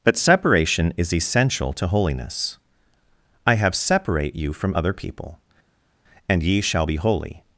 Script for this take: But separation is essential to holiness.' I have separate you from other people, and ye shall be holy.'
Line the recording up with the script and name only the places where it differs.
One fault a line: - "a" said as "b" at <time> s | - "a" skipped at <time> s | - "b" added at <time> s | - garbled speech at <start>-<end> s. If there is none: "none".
none